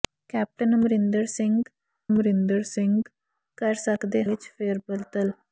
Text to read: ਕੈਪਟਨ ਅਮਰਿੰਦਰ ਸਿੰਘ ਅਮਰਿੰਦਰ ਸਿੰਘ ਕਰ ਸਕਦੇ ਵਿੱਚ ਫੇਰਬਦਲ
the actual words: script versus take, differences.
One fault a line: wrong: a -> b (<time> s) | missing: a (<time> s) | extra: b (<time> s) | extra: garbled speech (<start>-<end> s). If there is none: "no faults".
no faults